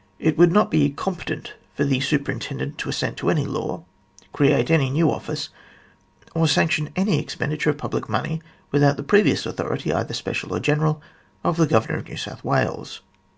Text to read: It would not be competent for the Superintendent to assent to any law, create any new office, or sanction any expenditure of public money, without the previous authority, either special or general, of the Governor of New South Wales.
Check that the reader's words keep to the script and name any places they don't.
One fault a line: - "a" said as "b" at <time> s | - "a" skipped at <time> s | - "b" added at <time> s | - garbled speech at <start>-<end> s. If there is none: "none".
none